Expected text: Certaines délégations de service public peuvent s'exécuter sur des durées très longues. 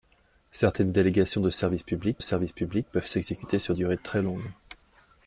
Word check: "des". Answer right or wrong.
wrong